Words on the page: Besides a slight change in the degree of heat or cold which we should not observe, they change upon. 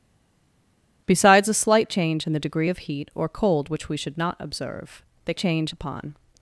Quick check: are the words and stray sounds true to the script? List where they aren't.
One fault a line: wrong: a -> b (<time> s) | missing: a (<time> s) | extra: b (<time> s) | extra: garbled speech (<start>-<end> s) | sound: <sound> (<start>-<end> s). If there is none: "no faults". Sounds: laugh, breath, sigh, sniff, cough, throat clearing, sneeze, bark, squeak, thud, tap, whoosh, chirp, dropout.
no faults